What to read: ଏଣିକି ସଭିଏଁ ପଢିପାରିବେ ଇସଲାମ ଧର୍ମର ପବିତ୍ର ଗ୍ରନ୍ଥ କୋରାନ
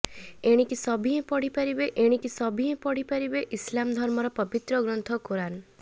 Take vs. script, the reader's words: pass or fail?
fail